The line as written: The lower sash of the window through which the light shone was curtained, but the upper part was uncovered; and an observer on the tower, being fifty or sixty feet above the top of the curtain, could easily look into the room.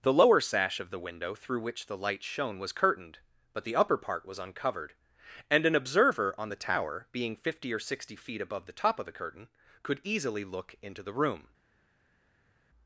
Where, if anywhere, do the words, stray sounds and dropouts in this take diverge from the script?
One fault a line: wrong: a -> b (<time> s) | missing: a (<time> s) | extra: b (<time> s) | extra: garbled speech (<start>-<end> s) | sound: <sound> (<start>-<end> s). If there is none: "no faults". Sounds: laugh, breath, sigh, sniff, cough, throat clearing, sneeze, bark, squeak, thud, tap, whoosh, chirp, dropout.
no faults